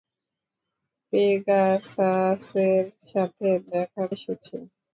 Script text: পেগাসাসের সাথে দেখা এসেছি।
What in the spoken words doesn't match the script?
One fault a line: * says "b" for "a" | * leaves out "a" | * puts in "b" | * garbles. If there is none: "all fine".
all fine